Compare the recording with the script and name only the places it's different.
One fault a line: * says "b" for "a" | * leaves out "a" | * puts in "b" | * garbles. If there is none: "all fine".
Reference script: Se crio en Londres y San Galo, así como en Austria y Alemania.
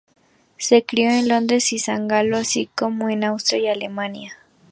all fine